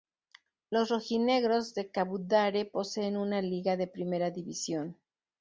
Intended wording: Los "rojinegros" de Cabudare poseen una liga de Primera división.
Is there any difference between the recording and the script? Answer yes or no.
no